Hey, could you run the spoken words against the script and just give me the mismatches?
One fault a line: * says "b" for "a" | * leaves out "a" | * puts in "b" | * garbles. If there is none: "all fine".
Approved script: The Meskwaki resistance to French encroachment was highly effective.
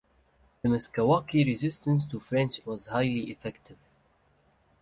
* leaves out "encroachment"